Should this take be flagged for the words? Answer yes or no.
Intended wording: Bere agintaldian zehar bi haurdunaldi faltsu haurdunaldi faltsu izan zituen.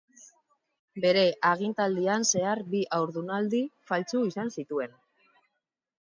yes